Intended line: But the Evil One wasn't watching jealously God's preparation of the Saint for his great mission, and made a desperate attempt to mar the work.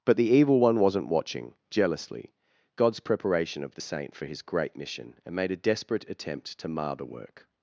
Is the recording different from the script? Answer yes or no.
no